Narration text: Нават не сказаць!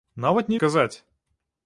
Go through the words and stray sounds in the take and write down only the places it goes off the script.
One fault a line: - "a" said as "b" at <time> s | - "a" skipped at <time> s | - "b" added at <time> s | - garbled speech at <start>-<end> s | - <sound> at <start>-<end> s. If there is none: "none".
none